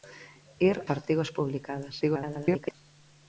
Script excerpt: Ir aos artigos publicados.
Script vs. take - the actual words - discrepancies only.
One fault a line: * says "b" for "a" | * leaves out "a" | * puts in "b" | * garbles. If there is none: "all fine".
* leaves out "aos"
* garbles